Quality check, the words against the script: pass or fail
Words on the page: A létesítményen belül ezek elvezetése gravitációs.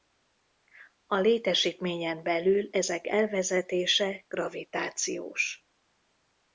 pass